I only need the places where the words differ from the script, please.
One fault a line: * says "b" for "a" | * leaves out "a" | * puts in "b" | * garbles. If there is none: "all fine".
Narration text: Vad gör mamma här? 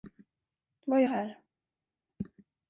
* leaves out "mamma"